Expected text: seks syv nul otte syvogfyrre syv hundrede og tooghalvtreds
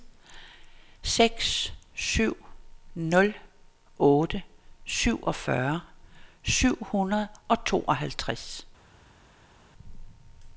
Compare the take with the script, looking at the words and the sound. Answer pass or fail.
pass